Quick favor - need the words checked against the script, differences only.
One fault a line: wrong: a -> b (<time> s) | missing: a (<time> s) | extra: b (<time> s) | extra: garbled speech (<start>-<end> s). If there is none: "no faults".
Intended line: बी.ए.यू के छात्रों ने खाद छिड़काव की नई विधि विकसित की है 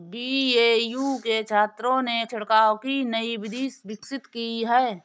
missing: खाद (2.2 s)